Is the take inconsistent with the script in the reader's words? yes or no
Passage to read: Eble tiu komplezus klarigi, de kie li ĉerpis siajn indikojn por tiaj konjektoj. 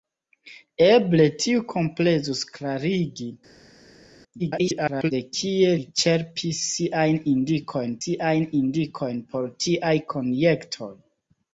yes